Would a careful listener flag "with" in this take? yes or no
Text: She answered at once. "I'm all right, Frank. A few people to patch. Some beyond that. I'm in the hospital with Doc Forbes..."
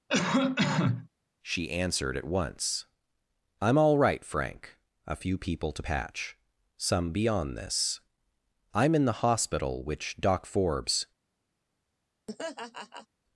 yes